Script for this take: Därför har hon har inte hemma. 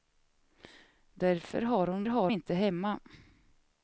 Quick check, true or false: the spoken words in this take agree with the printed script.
true